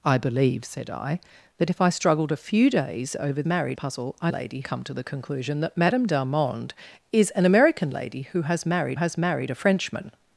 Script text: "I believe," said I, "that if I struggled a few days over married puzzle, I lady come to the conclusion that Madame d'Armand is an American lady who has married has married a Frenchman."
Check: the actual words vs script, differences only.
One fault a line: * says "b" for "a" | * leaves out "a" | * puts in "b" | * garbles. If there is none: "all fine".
all fine